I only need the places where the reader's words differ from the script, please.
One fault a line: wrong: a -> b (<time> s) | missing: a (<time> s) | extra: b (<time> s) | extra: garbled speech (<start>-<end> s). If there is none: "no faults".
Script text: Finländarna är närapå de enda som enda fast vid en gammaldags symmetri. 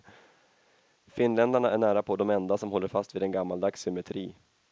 wrong: enda -> håller (2.7 s)